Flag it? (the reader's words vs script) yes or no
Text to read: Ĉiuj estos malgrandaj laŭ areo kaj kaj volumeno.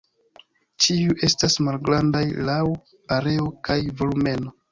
yes